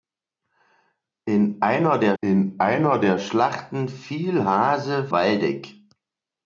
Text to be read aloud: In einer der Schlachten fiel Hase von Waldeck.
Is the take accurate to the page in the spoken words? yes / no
no